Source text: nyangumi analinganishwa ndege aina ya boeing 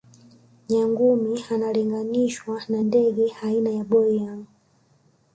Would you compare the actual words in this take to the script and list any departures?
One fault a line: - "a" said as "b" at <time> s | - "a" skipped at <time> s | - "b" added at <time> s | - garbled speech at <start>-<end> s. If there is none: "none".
- "na" added at 2.7 s